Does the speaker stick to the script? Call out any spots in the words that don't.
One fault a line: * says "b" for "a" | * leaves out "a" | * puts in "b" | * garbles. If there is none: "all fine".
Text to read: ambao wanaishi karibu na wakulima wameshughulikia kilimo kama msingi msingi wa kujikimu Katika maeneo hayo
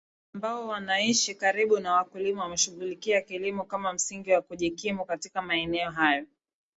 * leaves out "msingi"